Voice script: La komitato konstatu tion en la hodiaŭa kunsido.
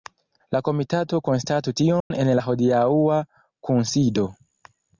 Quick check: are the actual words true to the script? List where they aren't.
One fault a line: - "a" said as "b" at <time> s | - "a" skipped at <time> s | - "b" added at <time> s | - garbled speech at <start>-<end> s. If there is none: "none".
none